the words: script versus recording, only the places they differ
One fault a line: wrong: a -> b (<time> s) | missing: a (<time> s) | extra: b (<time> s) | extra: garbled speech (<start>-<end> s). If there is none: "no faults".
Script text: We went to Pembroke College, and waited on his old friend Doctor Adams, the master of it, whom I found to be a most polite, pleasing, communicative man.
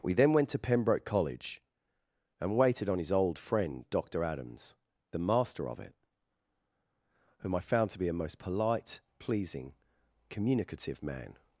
extra: then (0.1 s)